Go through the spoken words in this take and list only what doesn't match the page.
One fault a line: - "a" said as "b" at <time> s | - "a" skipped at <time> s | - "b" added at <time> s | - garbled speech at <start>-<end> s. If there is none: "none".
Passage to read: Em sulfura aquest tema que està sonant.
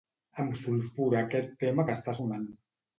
none